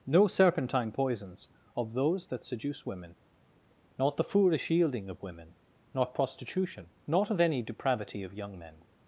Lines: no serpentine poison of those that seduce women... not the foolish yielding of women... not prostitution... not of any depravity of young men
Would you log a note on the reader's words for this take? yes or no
yes